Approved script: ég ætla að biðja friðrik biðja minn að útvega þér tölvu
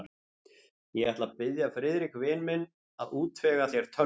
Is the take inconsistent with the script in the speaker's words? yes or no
yes